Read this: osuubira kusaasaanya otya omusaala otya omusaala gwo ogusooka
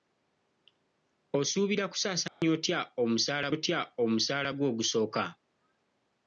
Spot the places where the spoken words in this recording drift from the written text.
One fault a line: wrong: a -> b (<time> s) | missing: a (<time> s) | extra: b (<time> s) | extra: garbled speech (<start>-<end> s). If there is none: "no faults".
no faults